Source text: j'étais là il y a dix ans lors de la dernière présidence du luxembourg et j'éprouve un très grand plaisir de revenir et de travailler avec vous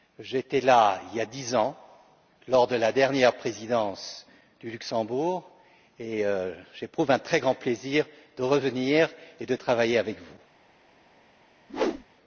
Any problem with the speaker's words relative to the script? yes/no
no